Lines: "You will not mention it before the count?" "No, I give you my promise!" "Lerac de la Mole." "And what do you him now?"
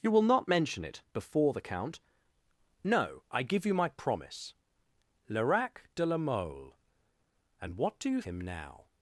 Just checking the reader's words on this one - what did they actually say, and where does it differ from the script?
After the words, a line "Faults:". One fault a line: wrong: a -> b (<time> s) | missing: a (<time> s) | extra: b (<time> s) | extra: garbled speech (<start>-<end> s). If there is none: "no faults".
"You will not mention it before the count?" "No, I give you my promise!" "Lerac de la Mole." "And what do you him now?"
Faults:
no faults